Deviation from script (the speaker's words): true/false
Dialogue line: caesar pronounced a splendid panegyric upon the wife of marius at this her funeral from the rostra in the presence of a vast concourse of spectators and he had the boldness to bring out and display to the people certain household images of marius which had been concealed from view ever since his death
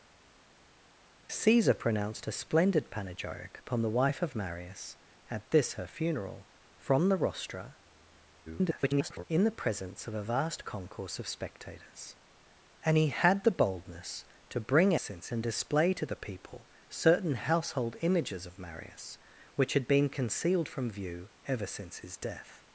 true